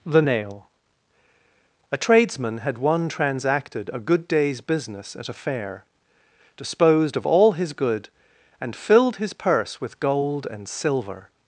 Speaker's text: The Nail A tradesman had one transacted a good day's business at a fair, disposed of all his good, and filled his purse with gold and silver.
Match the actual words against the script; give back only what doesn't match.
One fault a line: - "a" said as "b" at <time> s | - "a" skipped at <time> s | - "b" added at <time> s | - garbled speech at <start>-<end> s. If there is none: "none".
none